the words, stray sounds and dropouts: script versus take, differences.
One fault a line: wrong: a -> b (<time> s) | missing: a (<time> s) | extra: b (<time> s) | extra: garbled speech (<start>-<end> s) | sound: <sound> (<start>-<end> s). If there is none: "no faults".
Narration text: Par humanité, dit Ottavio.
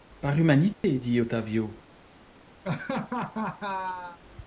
sound: dropout (0.7-0.8 s)
sound: laugh (2.6-4.2 s)